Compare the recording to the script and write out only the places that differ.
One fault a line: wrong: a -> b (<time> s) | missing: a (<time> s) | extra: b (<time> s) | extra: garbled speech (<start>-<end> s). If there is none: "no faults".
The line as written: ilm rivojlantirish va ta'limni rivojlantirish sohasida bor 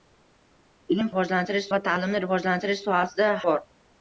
no faults